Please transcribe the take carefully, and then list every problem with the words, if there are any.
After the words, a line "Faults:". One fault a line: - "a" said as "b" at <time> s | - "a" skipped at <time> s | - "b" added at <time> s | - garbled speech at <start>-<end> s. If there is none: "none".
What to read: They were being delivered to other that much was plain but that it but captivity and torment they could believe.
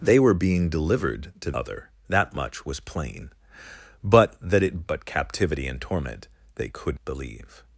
They were being delivered to other that much was plain but that it but captivity and torment they could believe.
Faults:
none